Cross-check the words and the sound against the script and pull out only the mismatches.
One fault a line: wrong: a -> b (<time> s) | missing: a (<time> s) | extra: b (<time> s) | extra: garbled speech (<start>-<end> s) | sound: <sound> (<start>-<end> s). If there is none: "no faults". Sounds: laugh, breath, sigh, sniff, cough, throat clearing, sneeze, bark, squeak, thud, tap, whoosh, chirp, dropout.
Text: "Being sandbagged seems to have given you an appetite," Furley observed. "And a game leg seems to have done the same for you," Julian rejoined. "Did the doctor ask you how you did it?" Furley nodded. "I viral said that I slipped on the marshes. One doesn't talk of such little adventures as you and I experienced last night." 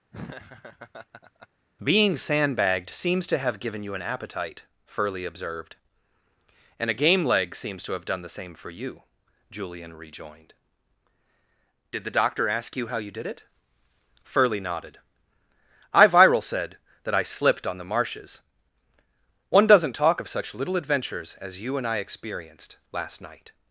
sound: laugh (0.1-1.5 s)